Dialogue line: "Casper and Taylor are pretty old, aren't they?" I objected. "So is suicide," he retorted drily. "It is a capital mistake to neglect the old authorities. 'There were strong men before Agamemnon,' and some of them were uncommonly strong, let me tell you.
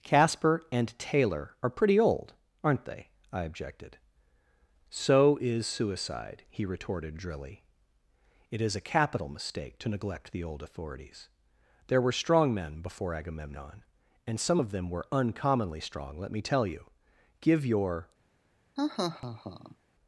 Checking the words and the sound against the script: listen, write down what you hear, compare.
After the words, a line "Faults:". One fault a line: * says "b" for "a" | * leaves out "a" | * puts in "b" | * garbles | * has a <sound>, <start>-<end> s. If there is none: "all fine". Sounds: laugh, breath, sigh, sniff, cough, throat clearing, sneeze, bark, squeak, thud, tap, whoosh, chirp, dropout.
"Casper and Taylor are pretty old, aren't they?" I objected. "So is suicide," he retorted drily. "It is a capital mistake to neglect the old authorities. 'There were strong men before Agamemnon,' and some of them were uncommonly strong, let me tell you. Give your
Faults:
* puts in "Give your"
* has a laugh, 18.8-19.8 s